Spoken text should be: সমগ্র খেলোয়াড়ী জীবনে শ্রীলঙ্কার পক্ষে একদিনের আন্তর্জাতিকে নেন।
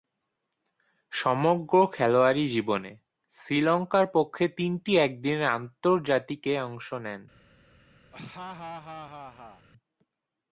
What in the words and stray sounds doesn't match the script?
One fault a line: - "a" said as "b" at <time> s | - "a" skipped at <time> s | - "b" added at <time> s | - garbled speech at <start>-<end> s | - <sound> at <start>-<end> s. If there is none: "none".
- "তিনটি" added at 4.6 s
- "অংশ" added at 6.6 s
- laugh at 8.1-9.7 s